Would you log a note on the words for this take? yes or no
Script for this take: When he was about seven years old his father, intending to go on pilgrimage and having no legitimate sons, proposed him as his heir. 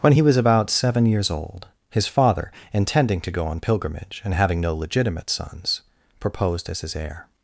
yes